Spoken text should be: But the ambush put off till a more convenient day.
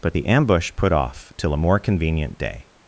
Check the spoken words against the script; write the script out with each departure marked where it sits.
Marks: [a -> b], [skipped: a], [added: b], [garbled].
But the ambush put off till a more convenient day.